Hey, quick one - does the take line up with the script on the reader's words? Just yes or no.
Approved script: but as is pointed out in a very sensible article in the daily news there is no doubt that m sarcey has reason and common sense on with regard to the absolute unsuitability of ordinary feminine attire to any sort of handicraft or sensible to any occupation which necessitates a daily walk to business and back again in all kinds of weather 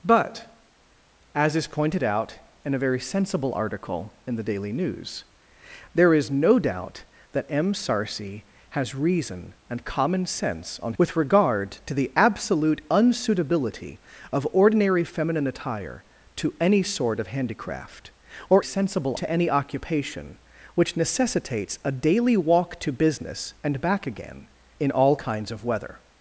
yes